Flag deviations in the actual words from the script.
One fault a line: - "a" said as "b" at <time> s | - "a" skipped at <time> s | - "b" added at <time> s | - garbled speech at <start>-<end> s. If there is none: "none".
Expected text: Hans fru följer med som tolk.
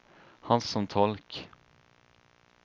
- "fru följer med" skipped at 0.7 s